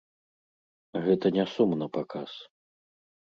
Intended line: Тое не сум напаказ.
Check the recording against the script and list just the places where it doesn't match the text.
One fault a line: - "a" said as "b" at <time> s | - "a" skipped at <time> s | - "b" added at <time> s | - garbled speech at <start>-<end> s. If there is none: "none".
- "Тое" said as "Гэта" at 1.0 s